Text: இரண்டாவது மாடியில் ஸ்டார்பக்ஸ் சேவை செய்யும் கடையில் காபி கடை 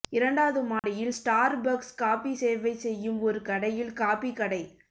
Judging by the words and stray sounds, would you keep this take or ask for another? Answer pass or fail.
fail